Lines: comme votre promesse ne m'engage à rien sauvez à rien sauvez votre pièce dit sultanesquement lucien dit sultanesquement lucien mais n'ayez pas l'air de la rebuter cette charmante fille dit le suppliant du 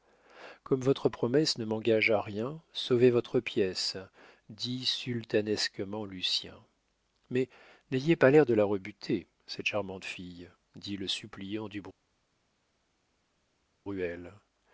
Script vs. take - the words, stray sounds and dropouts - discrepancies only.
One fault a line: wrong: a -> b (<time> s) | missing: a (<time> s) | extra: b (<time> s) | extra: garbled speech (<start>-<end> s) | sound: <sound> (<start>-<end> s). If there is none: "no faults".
missing: à rien sauvez (3.1 s)
missing: dit sultanesquement lucien (6.5 s)